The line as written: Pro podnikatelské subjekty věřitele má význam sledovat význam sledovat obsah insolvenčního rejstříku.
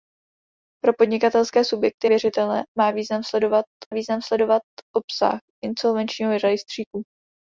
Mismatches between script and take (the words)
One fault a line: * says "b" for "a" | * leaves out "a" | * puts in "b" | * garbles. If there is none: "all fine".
all fine